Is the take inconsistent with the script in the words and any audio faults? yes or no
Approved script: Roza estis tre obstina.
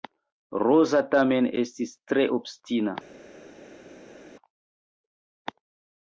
yes